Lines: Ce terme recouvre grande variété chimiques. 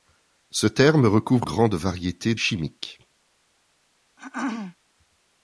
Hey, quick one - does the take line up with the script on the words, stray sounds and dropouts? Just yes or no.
no